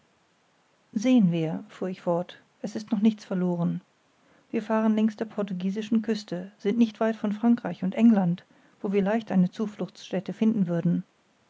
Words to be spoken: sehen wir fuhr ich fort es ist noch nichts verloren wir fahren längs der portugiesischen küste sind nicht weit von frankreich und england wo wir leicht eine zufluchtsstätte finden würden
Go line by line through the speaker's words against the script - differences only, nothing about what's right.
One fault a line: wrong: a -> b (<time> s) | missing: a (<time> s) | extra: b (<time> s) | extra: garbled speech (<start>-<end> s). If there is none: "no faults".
no faults